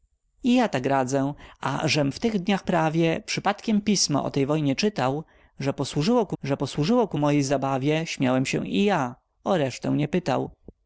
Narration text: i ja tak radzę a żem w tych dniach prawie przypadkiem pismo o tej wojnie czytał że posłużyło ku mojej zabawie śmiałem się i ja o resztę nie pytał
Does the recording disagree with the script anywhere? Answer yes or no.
yes